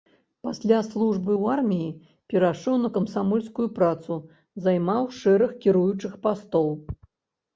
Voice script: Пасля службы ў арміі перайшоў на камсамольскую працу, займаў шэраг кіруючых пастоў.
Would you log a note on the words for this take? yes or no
no